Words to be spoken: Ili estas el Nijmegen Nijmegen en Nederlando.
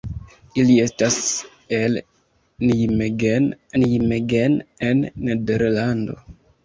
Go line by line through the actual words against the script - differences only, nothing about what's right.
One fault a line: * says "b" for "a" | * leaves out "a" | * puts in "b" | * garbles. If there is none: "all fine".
all fine